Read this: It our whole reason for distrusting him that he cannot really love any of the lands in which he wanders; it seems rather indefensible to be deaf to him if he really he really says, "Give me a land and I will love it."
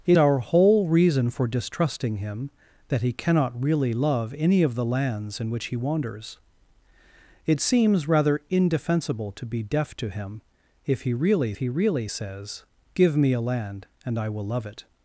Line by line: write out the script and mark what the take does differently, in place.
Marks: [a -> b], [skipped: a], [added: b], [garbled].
It our whole reason for distrusting him that he cannot really love any of the lands in which he wanders; it seems rather indefensible to be deaf to him if he really he really says, "Give me a land and I will love it."